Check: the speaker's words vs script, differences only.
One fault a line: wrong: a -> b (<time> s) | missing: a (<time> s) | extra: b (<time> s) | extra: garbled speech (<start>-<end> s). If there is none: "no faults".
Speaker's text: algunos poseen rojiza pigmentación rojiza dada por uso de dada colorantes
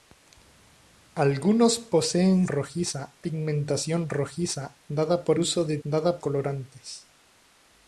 no faults